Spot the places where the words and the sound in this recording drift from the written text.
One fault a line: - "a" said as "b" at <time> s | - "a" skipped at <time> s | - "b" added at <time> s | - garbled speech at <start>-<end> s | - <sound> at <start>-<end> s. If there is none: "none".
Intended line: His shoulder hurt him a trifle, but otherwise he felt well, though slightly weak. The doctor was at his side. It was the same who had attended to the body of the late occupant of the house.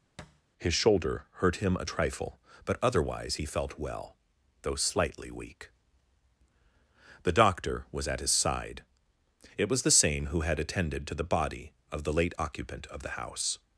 - thud at 0.2-0.4 s